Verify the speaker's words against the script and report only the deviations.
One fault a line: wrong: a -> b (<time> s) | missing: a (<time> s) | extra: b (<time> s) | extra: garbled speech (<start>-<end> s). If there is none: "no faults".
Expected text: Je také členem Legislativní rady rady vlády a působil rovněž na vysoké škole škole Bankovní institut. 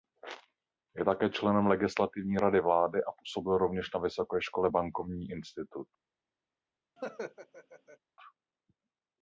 missing: rady (2.6 s)
missing: škole (4.7 s)